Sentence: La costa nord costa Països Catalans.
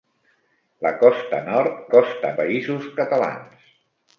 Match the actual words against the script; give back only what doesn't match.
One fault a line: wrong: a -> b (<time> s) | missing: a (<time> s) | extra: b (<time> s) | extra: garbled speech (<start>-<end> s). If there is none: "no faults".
no faults